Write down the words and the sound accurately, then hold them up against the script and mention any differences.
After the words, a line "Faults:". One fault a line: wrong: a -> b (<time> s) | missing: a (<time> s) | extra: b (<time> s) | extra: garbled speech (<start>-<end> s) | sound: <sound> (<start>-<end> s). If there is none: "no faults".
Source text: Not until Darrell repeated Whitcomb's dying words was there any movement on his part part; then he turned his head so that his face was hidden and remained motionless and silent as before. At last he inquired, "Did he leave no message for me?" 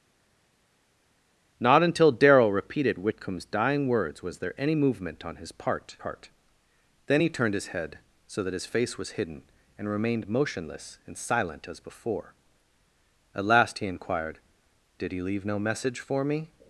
Not until Darrell repeated Whitcomb's dying words was there any movement on his part part; then he turned his head so that his face was hidden and remained motionless and silent as before. At last he inquired, "Did he leave no message for me?"
Faults:
no faults